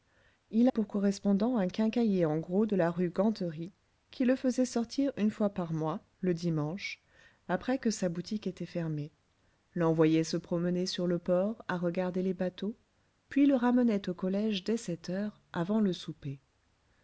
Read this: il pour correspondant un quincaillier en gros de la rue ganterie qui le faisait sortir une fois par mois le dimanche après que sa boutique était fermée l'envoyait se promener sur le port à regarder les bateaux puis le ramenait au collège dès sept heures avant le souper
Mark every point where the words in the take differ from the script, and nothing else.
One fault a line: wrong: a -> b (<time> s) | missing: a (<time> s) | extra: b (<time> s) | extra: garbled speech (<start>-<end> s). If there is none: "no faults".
no faults